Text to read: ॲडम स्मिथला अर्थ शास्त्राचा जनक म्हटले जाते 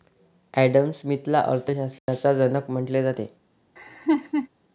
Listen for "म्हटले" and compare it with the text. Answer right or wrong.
right